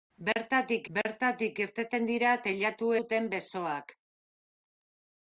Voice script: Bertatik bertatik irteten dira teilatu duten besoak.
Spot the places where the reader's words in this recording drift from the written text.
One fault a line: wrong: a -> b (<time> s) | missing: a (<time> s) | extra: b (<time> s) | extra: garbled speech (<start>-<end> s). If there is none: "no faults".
no faults